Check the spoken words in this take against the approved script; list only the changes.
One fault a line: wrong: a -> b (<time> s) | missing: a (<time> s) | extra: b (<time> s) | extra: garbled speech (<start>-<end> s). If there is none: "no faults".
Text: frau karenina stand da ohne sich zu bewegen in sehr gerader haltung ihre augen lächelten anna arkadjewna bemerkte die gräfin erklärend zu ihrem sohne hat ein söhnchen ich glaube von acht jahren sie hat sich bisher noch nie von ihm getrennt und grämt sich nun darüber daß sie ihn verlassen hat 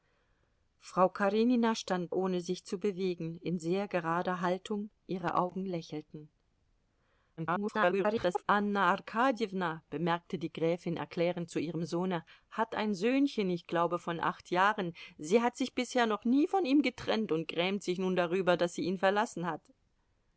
missing: da (2.1 s)
extra: garbled speech (7.4-8.4 s)